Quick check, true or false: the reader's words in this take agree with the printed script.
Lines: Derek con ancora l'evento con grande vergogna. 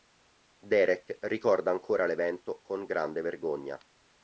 false